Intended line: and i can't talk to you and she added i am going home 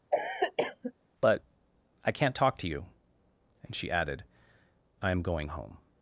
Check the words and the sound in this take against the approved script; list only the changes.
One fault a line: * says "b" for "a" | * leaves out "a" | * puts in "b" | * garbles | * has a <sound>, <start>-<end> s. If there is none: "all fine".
* has a cough, 0.1-0.9 s
* says "but" for "and"